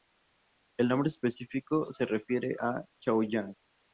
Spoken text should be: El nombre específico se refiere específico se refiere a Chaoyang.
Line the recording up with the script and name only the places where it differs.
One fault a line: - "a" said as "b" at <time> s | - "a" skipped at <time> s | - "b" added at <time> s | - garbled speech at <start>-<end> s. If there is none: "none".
- "específico se refiere" skipped at 2.5 s